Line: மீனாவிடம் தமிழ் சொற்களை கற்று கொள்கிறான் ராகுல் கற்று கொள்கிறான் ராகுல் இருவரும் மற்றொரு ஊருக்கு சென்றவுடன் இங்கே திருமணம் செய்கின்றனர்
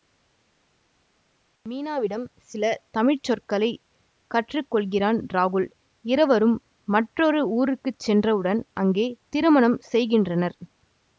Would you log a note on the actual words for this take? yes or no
yes